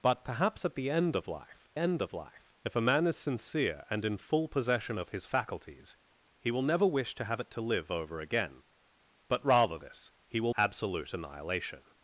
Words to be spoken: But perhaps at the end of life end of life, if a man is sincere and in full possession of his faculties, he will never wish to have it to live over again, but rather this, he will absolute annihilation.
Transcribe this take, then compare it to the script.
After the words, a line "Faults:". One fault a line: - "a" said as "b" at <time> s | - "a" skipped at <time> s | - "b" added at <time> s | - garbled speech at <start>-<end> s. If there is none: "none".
But perhaps at the end of life end of life, if a man is sincere and in full possession of his faculties, he will never wish to have it to live over again, but rather this, he will absolute annihilation.
Faults:
none